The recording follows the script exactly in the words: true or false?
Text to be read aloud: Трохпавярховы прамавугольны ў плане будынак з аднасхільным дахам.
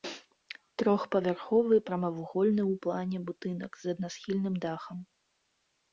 true